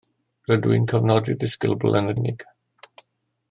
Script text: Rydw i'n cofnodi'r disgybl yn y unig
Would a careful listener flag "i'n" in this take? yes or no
no